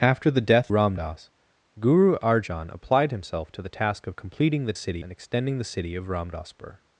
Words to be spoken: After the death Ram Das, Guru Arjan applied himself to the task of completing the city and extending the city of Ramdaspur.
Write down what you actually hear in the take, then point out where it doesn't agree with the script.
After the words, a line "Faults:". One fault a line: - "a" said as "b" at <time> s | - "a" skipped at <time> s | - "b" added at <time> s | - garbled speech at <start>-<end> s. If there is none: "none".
After the death Ram Das, Guru Arjan applied himself to the task of completing the city and extending the city of Ramdaspur.
Faults:
none